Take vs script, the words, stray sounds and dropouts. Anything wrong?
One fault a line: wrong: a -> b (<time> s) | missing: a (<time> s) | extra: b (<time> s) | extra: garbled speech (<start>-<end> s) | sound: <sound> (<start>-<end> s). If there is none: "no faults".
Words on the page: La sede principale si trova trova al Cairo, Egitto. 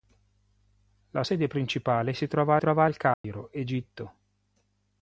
sound: dropout (3.1-3.2 s)